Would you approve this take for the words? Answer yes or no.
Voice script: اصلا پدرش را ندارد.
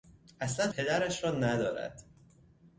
yes